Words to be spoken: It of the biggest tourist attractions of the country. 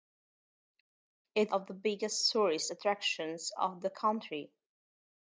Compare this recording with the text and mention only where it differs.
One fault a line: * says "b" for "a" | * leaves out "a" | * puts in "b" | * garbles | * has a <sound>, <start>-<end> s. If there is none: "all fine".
all fine